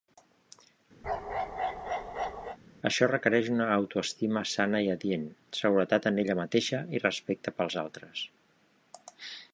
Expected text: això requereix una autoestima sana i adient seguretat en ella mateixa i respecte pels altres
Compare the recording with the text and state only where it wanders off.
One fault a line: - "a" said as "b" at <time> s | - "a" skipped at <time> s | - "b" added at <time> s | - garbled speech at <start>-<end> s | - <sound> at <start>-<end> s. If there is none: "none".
- bark at 1.0-2.6 s